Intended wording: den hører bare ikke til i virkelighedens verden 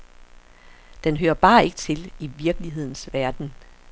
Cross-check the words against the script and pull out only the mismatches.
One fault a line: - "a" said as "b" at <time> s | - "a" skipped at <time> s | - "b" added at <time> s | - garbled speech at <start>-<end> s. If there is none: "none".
none